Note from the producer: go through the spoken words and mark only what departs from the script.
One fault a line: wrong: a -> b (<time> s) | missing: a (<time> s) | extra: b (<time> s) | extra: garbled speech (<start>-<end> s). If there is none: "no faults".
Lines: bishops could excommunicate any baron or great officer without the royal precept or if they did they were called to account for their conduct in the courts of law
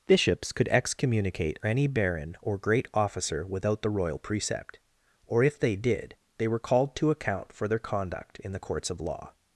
no faults